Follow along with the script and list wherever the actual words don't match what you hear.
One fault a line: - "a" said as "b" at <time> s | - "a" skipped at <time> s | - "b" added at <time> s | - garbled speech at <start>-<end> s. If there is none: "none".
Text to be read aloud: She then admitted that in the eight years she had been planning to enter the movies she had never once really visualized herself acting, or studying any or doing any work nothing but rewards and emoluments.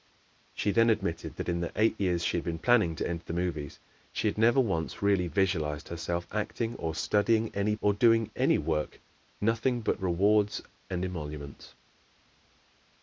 none